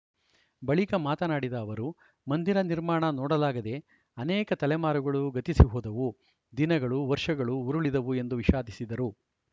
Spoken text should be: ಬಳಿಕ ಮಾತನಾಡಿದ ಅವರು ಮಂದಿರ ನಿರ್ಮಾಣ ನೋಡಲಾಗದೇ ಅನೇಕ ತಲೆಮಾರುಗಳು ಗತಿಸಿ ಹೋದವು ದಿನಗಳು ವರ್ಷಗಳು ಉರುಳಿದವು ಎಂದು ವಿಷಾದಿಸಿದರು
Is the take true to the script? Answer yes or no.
yes